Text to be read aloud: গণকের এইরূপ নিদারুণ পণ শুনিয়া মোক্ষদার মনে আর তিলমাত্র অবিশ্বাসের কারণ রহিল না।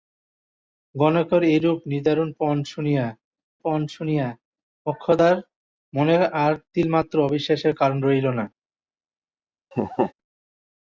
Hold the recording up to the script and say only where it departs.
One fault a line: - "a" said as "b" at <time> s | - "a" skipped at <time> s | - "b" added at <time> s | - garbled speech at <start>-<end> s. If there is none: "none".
- "পণ শুনিয়া" added at 3.6 s